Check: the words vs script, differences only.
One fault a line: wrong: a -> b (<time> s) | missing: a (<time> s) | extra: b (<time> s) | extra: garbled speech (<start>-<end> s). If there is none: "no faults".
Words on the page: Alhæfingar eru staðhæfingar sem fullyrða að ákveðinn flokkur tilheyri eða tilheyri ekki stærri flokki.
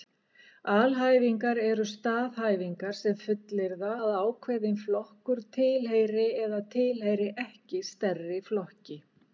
no faults